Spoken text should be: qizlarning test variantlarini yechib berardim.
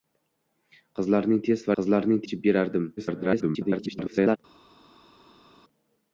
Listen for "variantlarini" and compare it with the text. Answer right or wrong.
wrong